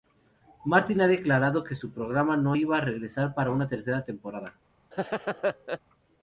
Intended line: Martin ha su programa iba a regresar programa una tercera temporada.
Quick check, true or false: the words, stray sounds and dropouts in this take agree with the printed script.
false